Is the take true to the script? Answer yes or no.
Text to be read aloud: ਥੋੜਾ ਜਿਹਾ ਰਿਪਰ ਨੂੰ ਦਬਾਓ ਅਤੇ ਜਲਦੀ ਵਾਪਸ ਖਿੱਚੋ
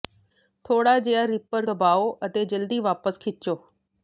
no